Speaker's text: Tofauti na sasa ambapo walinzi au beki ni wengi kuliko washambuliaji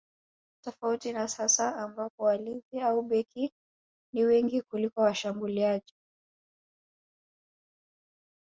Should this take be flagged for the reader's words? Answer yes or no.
no